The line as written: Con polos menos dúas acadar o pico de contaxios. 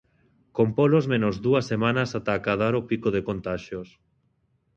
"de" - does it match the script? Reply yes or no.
yes